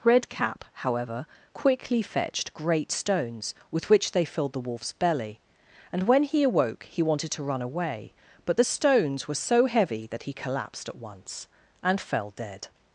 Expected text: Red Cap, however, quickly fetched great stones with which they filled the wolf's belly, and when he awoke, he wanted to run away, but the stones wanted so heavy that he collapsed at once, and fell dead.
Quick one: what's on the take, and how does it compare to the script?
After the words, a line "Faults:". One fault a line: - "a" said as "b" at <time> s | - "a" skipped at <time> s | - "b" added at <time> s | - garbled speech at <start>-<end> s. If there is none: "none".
Red Cap, however, quickly fetched great stones with which they filled the wolf's belly, and when he awoke, he wanted to run away, but the stones were so heavy that he collapsed at once, and fell dead.
Faults:
- "wanted" said as "were" at 9.3 s